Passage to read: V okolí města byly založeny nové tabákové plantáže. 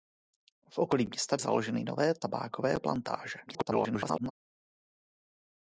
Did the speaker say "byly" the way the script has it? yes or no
no